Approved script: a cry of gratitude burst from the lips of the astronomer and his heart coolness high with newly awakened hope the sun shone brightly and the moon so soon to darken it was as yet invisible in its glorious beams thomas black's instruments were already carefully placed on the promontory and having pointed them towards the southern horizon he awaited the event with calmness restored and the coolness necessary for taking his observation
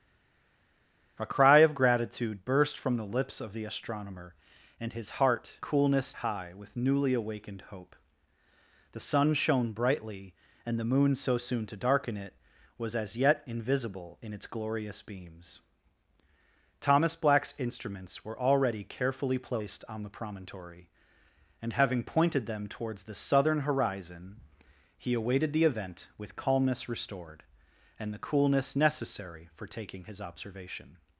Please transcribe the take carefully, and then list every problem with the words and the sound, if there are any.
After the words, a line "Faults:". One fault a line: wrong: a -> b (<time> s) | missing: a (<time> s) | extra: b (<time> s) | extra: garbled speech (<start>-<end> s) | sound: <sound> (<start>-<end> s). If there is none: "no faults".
a cry of gratitude burst from the lips of the astronomer and his heart coolness high with newly awakened hope the sun shone brightly and the moon so soon to darken it was as yet invisible in its glorious beams thomas black's instruments were already carefully placed on the promontory and having pointed them towards the southern horizon he awaited the event with calmness restored and the coolness necessary for taking his observation
Faults:
no faults